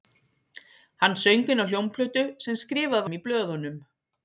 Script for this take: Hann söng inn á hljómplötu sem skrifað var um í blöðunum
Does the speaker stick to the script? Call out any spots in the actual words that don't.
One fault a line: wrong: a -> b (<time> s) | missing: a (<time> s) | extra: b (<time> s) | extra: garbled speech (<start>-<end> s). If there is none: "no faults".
missing: var (3.1 s)